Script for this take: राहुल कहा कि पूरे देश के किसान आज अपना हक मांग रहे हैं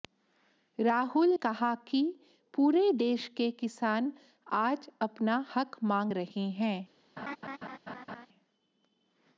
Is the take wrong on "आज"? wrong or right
right